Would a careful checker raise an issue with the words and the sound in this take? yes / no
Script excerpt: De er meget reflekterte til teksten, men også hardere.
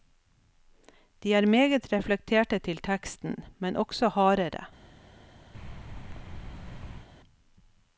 yes